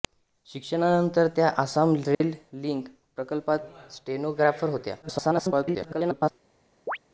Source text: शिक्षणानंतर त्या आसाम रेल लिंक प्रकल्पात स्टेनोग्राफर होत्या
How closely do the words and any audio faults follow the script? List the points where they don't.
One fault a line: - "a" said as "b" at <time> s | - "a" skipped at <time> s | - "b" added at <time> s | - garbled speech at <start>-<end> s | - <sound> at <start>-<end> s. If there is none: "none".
- dropout at 2.1-2.2 s
- garbled speech at 5.0-6.3 s
- chirp at 6.9-7.0 s